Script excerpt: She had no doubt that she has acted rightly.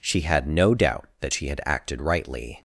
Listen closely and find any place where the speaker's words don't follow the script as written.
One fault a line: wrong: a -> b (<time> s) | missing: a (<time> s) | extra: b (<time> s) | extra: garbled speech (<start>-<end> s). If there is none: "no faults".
wrong: has -> had (1.5 s)